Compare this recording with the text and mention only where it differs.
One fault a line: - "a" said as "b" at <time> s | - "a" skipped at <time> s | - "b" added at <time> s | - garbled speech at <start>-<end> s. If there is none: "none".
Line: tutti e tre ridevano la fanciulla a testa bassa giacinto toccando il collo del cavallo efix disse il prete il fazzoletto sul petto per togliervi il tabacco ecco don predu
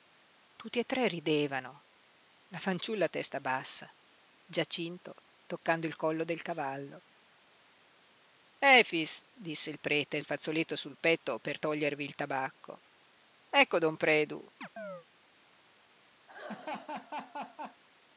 none